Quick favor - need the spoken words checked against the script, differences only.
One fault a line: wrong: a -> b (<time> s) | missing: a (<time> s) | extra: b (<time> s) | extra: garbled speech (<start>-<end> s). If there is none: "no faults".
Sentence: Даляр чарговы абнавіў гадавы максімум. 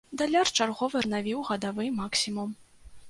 no faults